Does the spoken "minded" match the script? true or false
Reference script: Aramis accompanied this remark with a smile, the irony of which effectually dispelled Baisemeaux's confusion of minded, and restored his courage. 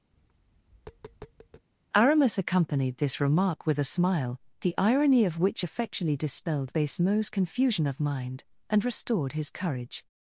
false